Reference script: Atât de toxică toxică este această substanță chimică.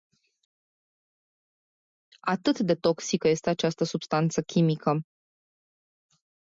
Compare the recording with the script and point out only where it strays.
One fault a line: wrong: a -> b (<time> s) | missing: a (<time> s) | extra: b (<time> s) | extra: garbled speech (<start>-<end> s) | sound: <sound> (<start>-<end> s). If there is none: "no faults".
missing: toxică (3.3 s)